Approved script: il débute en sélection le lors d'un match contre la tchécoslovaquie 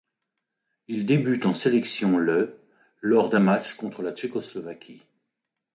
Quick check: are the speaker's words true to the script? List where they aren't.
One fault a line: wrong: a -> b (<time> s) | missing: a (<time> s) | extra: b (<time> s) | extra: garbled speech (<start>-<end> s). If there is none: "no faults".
no faults